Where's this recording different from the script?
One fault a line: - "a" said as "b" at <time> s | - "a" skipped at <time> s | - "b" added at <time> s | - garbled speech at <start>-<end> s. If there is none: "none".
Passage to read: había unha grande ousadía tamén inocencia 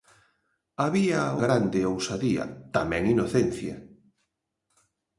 - "unha" skipped at 1.2 s